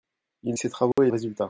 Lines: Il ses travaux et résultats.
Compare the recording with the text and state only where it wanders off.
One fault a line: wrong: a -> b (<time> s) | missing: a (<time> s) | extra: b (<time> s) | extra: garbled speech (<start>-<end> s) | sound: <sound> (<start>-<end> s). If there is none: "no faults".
sound: dropout (0.9-1.0 s)